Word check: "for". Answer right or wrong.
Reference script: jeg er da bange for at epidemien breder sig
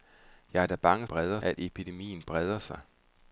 wrong